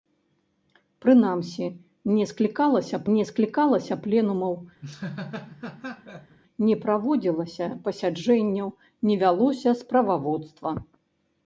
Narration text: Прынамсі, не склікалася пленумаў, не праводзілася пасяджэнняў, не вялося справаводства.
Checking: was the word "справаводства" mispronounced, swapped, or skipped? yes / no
no